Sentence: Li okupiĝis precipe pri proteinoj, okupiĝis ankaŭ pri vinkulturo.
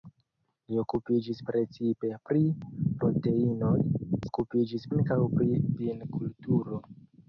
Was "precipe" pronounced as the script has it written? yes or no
yes